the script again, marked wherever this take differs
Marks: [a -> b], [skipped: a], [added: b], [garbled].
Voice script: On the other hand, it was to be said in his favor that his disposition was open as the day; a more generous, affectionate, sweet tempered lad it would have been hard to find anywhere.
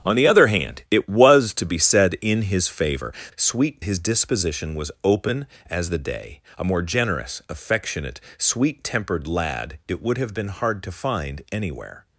On the other hand, it was to be said in his favor [that -> sweet] his disposition was open as the day; a more generous, affectionate, sweet tempered lad it would have been hard to find anywhere.